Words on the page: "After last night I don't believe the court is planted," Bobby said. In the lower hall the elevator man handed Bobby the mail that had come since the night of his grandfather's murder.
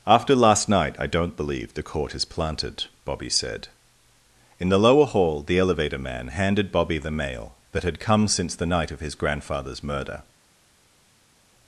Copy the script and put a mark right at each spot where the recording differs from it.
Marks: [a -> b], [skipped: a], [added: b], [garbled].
"After last night I don't believe the court is planted," Bobby said. In the lower hall the elevator man handed Bobby the mail that had come since the night of his grandfather's murder.